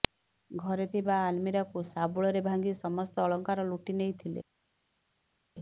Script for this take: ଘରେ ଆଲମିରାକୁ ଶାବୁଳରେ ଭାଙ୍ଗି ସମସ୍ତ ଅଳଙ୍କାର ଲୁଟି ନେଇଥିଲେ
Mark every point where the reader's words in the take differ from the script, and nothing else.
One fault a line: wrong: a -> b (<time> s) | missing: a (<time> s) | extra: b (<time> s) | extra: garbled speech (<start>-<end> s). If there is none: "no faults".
extra: ଥିବା (0.9 s)